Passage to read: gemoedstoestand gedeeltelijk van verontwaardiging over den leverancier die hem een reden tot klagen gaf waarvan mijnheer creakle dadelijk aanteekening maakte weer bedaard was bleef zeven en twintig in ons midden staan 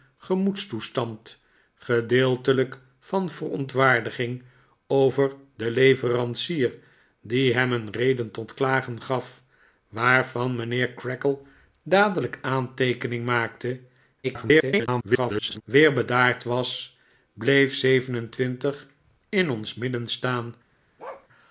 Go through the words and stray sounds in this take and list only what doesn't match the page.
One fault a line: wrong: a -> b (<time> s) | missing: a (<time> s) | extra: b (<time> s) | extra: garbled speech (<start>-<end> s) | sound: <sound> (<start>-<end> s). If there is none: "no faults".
extra: garbled speech (14.2-15.6 s)
sound: bark (21.0-21.3 s)